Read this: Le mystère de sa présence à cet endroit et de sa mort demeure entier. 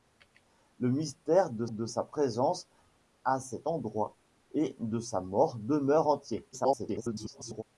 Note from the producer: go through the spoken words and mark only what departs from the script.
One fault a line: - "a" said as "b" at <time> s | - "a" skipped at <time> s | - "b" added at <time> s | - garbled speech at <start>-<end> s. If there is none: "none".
- "de" added at 1.7 s
- garbled speech at 6.5-7.6 s